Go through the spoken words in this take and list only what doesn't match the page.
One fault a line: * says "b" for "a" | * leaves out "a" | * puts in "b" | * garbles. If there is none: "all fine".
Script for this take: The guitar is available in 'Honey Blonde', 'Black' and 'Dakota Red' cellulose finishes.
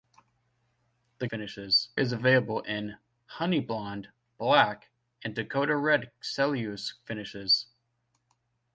* says "finishes" for "guitar"